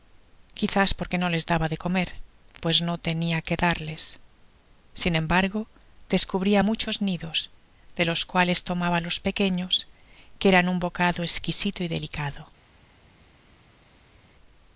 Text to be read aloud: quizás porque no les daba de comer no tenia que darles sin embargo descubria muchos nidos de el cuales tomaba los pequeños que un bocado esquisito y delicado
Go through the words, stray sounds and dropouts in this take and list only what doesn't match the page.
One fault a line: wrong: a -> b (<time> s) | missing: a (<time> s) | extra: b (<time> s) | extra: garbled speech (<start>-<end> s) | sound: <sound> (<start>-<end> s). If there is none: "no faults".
extra: pues (2.6 s)
wrong: el -> los (8.0 s)
extra: eran (10.5 s)